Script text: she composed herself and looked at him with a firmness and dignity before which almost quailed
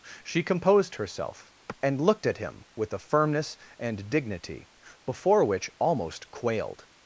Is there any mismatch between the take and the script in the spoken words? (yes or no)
no